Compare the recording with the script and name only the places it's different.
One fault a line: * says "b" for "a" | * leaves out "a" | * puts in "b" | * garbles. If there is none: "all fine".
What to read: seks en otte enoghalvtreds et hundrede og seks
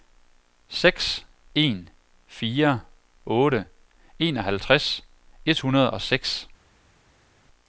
* puts in "fire"